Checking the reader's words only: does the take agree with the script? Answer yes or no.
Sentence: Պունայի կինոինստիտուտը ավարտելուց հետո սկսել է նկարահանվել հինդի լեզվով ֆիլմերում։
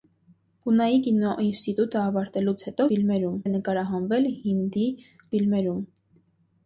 no